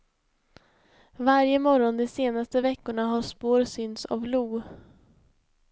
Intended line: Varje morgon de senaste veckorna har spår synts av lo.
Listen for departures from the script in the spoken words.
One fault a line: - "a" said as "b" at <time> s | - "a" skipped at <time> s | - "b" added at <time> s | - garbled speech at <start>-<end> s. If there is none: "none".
none